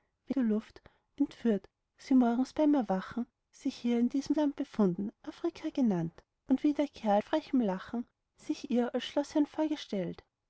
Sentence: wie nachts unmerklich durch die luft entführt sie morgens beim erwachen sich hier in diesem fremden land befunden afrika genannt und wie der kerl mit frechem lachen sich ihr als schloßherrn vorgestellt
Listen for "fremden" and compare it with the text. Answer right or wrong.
wrong